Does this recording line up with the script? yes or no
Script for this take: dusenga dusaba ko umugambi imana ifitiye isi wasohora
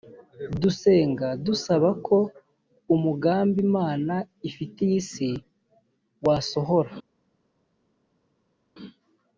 yes